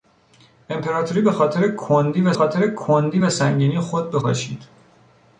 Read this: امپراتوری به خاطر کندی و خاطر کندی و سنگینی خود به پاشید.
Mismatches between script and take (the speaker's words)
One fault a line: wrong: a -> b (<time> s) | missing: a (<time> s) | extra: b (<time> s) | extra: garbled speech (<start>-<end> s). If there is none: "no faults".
no faults